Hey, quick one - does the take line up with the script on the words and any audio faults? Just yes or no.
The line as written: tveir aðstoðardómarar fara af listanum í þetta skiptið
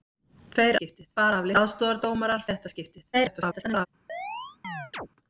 no